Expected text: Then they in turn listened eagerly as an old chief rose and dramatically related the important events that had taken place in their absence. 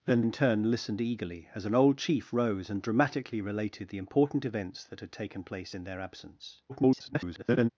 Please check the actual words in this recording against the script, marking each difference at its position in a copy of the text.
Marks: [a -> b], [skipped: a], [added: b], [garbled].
Then [skipped: they] in turn listened eagerly as an old chief rose and dramatically related the important events that had taken place in their absence. [garbled]